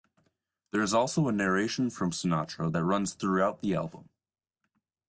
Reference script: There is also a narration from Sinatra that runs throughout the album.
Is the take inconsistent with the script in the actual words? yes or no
no